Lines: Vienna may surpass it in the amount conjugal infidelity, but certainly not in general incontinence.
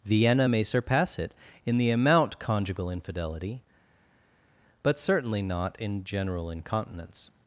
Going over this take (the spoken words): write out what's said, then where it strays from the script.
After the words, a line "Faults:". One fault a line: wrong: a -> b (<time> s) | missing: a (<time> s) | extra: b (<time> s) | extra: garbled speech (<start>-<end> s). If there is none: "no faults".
Vienna may surpass it in the amount conjugal infidelity, but certainly not in general incontinence.
Faults:
no faults